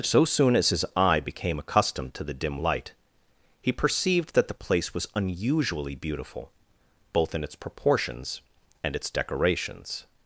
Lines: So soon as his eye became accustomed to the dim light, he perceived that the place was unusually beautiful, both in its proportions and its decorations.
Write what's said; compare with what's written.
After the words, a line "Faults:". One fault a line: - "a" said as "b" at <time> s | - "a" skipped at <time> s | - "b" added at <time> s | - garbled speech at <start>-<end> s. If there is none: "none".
So soon as his eye became accustomed to the dim light, he perceived that the place was unusually beautiful, both in its proportions and its decorations.
Faults:
none